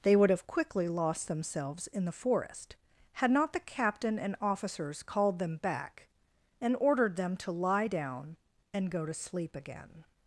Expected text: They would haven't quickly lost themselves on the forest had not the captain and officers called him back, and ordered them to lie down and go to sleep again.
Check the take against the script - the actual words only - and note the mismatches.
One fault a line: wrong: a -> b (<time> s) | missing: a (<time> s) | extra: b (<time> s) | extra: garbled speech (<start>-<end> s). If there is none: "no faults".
wrong: haven't -> have (0.3 s)
wrong: on -> in (1.9 s)
wrong: him -> them (5.4 s)